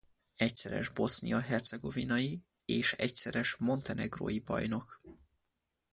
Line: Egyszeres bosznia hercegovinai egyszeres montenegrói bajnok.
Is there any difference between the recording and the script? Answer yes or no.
yes